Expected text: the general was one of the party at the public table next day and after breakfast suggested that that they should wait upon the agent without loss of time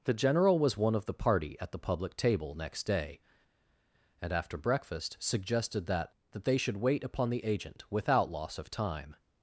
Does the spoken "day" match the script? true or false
true